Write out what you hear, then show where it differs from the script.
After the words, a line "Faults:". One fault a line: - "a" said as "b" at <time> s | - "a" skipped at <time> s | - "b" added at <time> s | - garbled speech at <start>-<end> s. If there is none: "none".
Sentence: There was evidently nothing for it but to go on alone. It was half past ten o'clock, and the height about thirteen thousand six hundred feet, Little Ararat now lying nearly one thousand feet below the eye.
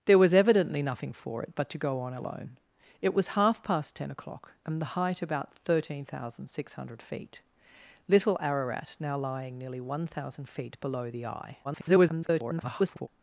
There was evidently nothing for it but to go on alone. It was half past ten o'clock, and the height about thirteen thousand six hundred feet, Little Ararat now lying nearly one thousand feet below the eye. [garbled]
Faults:
- garbled speech at 11.6-13.1 s